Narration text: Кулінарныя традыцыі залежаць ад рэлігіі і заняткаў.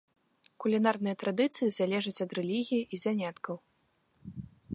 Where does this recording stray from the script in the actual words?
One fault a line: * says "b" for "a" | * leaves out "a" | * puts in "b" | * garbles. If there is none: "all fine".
all fine